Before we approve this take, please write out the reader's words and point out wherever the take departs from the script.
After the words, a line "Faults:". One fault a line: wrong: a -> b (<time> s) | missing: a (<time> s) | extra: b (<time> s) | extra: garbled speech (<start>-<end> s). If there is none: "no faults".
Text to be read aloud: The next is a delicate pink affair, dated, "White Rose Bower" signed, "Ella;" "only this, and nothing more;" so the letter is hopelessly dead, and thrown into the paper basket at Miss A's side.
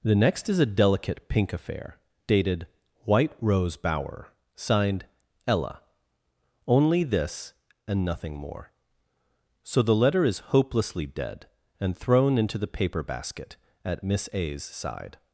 The next is a delicate pink affair, dated, "White Rose Bower" signed, "Ella;" "only this, and nothing more;" so the letter is hopelessly dead, and thrown into the paper basket at Miss A's side.
Faults:
no faults